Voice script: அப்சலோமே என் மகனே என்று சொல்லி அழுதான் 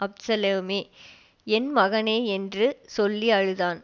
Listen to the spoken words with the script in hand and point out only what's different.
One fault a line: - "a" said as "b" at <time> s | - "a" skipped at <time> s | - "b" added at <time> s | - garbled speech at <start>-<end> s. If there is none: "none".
none